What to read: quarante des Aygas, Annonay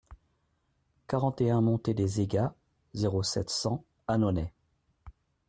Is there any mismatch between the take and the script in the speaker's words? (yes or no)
yes